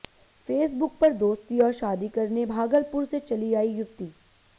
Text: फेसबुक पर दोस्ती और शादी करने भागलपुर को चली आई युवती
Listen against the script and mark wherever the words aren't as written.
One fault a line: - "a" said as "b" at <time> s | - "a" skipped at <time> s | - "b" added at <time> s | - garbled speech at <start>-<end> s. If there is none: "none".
- "को" said as "से" at 3.1 s